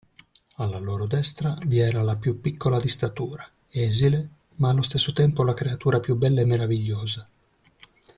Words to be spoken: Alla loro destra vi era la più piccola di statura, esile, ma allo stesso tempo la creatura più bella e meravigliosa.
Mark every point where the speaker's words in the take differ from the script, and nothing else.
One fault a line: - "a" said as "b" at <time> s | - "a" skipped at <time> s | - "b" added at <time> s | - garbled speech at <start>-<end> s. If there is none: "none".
none